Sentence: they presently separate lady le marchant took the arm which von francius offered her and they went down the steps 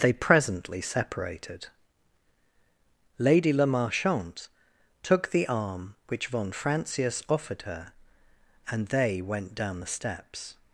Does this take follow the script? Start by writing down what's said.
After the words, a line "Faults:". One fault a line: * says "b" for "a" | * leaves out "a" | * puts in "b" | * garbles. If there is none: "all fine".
they presently separated lady le marchant took the arm which von francius offered her and they went down the steps
Faults:
* says "separated" for "separate"